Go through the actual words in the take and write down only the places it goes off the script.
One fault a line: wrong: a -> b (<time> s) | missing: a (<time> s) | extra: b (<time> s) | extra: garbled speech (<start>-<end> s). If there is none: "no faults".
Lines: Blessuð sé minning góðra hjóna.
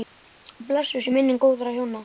no faults